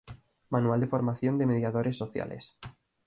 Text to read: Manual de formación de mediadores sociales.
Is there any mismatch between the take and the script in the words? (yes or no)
no